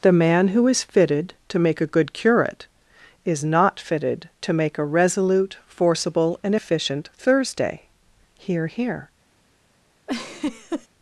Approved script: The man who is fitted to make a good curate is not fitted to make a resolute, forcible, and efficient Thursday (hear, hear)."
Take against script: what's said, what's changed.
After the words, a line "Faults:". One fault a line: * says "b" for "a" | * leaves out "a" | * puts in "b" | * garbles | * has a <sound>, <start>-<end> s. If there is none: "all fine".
The man who is fitted to make a good curate is not fitted to make a resolute, forcible, and efficient Thursday (hear, hear)."
Faults:
* has a laugh, 10.1-10.9 s